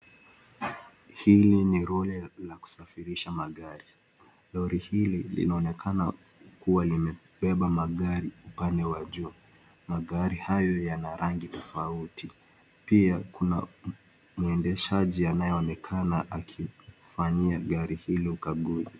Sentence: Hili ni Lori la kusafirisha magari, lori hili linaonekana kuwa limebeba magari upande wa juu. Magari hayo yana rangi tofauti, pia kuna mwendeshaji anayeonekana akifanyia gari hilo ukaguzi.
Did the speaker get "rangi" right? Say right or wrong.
right